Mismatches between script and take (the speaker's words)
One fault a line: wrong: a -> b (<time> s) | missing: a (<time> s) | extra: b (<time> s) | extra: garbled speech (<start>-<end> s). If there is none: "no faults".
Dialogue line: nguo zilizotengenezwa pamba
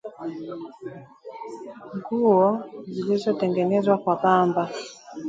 extra: kwa (4.0 s)